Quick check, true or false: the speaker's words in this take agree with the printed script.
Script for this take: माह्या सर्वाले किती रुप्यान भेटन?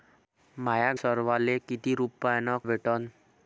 true